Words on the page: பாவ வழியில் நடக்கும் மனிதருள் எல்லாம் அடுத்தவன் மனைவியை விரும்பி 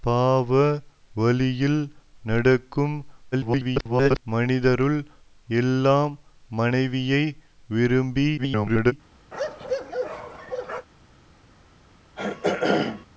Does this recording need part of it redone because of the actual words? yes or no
yes